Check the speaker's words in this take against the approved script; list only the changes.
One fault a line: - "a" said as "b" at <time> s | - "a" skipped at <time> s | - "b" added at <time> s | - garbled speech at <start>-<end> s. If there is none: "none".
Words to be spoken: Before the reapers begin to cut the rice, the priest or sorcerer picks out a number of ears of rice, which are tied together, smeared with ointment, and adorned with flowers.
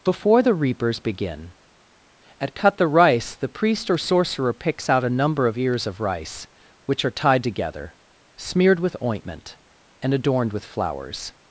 - "to" said as "at" at 2.4 s